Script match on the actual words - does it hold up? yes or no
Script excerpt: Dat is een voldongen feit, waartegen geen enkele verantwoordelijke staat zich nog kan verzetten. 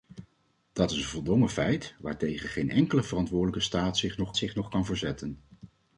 no